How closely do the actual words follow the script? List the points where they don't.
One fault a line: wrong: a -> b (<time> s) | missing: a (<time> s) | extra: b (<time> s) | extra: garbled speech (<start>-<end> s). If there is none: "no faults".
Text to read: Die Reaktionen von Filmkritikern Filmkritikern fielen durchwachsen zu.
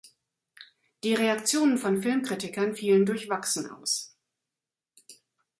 missing: Filmkritikern (2.7 s)
wrong: zu -> aus (3.7 s)